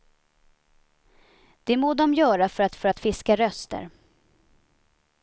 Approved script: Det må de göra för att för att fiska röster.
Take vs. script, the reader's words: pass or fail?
pass